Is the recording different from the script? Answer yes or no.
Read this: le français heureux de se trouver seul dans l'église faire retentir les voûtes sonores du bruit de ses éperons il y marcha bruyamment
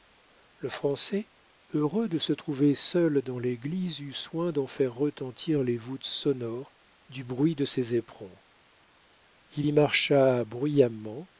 yes